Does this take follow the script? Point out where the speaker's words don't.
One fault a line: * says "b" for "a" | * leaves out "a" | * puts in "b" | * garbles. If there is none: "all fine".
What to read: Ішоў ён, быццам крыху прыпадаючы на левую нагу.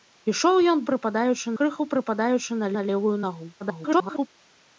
* says "прыпадаючы" for "быццам"
* puts in "на"
* garbles